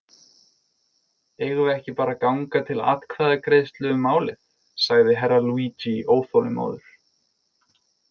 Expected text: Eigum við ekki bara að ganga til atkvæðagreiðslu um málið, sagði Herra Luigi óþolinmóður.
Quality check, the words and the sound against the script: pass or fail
pass